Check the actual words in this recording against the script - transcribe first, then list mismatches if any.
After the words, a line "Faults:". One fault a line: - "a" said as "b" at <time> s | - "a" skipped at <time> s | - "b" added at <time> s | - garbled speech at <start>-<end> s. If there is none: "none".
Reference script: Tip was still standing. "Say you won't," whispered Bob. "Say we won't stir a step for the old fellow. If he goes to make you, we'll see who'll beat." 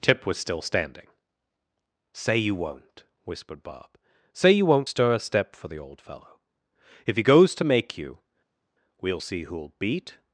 Tip was still standing. "Say you won't," whispered Bob. "Say you won't stir a step for the old fellow. If he goes to make you, we'll see who'll beat."
Faults:
- "we" said as "you" at 4.5 s